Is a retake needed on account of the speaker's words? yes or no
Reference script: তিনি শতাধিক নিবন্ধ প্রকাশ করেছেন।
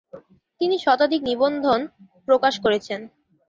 no